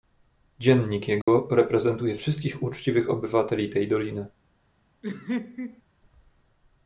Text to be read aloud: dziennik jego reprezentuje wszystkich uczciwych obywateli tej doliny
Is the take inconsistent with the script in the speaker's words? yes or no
no